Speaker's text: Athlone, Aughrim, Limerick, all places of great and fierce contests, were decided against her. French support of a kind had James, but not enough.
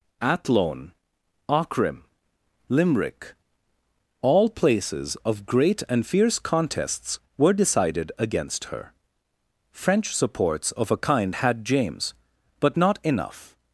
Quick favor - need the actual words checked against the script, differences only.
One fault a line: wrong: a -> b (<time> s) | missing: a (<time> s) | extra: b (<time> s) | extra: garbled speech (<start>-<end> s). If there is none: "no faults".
wrong: support -> supports (10.1 s)